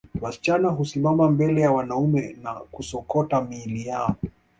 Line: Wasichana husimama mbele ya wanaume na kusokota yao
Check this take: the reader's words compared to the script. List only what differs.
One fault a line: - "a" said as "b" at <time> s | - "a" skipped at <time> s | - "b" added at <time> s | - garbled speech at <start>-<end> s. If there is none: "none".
- "miili" added at 3.4 s